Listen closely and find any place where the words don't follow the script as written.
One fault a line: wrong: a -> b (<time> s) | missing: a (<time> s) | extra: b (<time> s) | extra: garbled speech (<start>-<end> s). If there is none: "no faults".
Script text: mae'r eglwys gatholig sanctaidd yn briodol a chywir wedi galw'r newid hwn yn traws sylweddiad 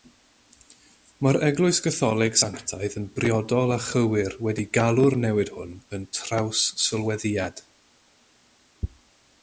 no faults